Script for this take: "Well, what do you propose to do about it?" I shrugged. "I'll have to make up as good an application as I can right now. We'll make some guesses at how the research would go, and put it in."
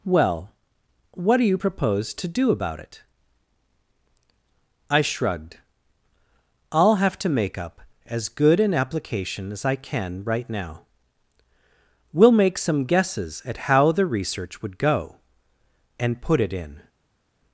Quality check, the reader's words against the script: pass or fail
pass